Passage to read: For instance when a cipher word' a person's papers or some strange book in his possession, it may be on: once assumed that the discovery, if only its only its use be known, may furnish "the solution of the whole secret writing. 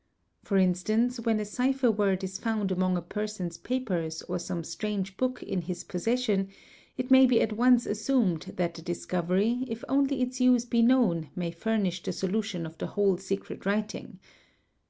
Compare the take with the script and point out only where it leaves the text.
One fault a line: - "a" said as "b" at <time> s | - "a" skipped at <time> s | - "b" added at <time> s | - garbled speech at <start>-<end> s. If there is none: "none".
- "is found among" added at 2.2 s
- "on" said as "at" at 7.4 s
- "only its" skipped at 10.4 s